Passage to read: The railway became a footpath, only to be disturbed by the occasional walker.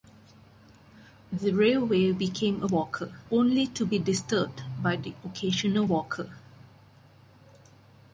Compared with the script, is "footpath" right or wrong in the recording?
wrong